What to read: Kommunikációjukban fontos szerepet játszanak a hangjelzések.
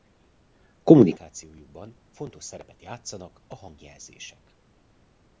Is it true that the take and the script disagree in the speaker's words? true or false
false